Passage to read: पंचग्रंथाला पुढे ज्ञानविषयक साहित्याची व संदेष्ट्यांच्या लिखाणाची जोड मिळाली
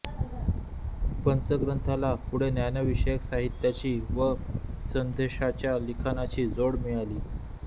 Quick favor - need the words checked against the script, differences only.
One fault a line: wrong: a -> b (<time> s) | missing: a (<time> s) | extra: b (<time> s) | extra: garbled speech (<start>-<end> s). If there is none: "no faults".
no faults